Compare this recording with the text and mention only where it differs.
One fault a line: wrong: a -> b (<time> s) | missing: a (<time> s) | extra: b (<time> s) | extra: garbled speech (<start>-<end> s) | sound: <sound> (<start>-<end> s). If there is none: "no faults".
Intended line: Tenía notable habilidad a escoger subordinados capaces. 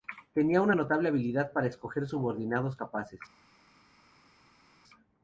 extra: una (0.6 s)
wrong: a -> para (1.5 s)